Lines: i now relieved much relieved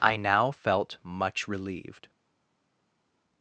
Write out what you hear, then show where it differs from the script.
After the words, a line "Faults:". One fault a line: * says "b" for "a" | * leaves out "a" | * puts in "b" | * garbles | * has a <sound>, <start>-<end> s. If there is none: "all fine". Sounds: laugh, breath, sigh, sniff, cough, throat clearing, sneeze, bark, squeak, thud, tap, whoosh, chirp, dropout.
i now felt much relieved
Faults:
* says "felt" for "relieved"